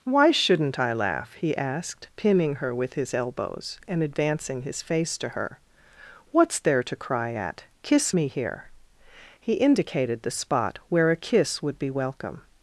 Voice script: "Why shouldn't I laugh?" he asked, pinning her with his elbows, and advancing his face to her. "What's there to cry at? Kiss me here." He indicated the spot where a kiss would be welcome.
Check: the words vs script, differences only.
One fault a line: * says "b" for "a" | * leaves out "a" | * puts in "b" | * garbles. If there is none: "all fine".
all fine